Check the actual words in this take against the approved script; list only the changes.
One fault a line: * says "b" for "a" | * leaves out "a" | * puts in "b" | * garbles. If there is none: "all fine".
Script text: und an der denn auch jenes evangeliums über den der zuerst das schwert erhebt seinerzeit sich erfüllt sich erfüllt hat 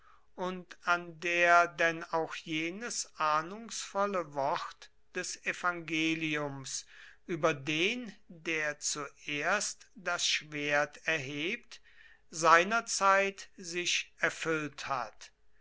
* puts in "ahnungsvolle wort des"
* leaves out "sich erfüllt"